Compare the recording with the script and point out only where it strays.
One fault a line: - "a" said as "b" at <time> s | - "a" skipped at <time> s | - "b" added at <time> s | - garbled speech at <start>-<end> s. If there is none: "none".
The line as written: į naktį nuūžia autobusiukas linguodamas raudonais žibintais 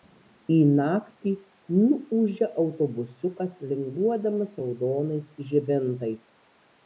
none